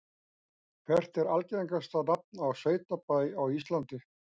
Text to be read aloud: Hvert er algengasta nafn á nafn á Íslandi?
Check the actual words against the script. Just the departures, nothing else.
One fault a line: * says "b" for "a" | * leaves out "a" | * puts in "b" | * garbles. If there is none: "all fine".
* says "sveitabæ" for "nafn"